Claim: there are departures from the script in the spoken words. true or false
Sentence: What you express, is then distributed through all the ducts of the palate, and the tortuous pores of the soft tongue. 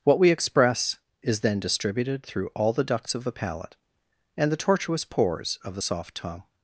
true